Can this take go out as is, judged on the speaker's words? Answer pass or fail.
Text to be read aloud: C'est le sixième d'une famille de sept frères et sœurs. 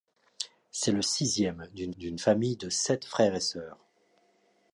fail